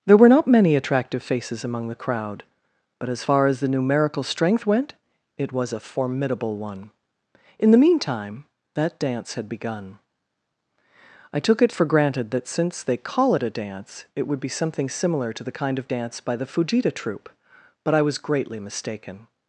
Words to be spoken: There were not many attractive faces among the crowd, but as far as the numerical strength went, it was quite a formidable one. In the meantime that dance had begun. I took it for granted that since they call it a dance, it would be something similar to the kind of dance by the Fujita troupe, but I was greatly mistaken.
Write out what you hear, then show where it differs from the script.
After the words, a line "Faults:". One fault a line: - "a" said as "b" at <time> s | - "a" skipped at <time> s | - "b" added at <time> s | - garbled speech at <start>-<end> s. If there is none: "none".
There were not many attractive faces among the crowd, but as far as the numerical strength went, it was a formidable one. In the meantime that dance had begun. I took it for granted that since they call it a dance, it would be something similar to the kind of dance by the Fujita troupe, but I was greatly mistaken.
Faults:
- "quite" skipped at 5.7 s